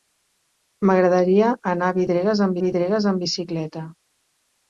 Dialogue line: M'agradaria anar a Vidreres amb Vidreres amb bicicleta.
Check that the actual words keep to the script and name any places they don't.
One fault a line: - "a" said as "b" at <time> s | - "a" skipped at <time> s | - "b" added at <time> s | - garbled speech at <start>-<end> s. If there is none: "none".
none